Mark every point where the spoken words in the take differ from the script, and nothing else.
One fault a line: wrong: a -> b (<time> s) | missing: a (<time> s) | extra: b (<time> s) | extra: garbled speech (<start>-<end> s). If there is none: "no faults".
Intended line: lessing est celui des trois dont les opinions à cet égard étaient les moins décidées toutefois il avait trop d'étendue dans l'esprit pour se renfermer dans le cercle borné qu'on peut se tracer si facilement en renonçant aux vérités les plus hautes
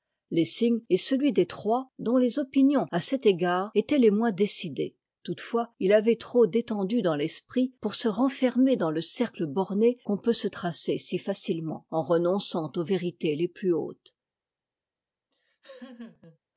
no faults